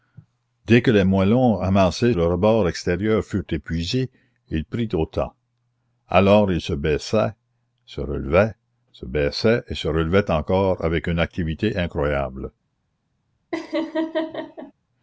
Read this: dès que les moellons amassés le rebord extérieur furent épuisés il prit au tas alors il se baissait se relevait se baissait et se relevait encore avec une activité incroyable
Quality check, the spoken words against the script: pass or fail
pass